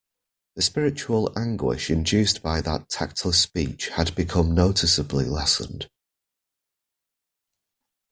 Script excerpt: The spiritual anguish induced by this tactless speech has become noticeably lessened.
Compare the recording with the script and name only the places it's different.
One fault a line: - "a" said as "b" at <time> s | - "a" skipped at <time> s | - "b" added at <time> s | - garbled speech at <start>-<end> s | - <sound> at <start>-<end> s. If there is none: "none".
- "this" said as "that" at 2.6 s
- "has" said as "had" at 3.9 s